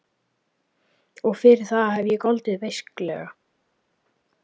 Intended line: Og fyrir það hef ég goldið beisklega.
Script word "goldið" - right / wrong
right